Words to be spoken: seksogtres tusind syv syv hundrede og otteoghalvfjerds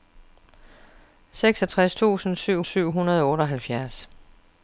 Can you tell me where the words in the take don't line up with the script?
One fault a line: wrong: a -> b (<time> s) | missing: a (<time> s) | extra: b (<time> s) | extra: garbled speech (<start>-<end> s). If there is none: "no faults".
no faults